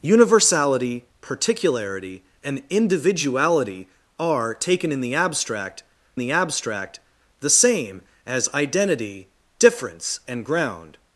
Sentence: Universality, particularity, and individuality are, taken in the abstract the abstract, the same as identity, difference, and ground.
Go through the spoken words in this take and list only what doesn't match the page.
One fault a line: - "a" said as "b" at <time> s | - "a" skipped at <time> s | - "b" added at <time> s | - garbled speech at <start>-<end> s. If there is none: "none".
none